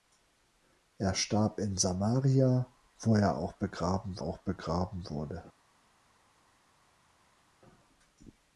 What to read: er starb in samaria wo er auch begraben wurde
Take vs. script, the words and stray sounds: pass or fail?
fail